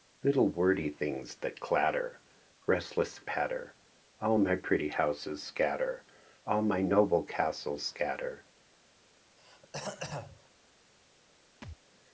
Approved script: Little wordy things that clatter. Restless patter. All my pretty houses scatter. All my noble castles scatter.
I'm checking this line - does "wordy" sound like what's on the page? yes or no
yes